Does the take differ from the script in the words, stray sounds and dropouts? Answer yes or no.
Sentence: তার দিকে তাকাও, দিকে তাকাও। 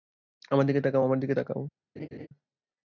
yes